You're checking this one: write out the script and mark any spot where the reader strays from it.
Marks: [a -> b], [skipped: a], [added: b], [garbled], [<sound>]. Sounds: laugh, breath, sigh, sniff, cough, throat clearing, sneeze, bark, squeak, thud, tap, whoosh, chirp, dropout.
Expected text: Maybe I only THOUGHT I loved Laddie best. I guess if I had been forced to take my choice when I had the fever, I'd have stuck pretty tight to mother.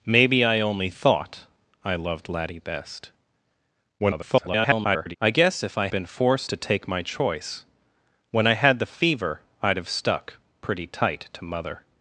Maybe I only THOUGHT I loved Laddie best. [garbled] I guess if I [skipped: had] been forced to take my choice when I had the fever, I'd have stuck pretty tight to mother.